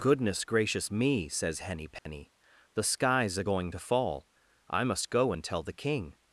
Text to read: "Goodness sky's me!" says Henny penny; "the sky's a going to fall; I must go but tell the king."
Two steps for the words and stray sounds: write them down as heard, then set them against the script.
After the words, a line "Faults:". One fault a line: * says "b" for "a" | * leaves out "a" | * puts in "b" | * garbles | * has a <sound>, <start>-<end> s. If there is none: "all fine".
"Goodness gracious me!" says Henny penny; "the sky's a going to fall; I must go and tell the king."
Faults:
* says "gracious" for "sky's"
* has a dropout, 2.0-2.1 s
* says "and" for "but"